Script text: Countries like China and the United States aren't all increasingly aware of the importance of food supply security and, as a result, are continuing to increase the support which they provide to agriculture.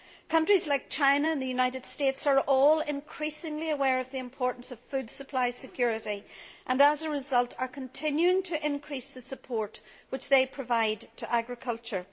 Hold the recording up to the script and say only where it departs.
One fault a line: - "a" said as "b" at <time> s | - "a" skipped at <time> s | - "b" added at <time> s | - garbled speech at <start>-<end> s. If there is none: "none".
- "aren't" said as "are" at 2.3 s